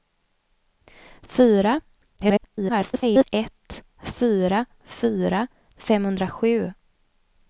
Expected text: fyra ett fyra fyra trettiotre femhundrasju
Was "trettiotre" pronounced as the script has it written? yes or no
no